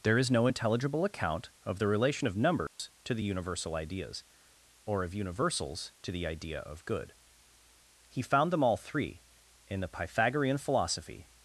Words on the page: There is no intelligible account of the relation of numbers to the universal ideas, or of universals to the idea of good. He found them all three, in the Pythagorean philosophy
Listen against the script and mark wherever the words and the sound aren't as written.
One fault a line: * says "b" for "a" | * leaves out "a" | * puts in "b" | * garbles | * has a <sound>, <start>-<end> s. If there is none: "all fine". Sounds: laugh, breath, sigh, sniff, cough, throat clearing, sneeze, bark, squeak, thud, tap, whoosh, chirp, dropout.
* has a dropout, 2.7-2.8 s